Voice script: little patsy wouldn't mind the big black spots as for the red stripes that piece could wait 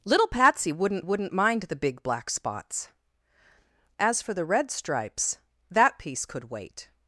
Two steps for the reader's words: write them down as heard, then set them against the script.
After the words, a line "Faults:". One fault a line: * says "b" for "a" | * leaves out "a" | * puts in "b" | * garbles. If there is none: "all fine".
little patsy wouldn't wouldn't mind the big black spots as for the red stripes that piece could wait
Faults:
* puts in "wouldn't"